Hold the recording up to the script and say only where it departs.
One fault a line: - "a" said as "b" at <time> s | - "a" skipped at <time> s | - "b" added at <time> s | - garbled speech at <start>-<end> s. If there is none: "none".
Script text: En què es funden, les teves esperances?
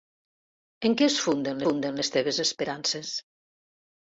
- "funden" added at 1.7 s